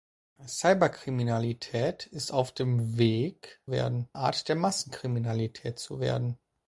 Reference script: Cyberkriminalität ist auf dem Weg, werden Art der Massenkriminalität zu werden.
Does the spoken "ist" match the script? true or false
true